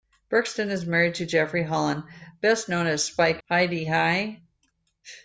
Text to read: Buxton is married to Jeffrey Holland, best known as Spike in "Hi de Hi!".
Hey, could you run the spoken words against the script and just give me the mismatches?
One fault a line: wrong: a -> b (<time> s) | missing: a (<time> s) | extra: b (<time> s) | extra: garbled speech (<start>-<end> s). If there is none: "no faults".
missing: in (3.4 s)